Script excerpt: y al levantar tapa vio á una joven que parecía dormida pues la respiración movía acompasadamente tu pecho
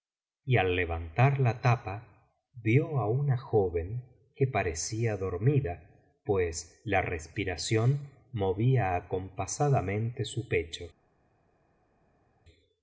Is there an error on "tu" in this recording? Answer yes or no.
yes